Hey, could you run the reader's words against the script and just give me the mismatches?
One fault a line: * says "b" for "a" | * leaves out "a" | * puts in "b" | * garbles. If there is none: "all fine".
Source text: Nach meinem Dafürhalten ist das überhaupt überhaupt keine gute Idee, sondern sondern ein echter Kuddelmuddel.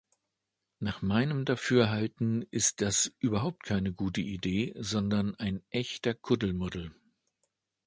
* leaves out "überhaupt"
* leaves out "sondern"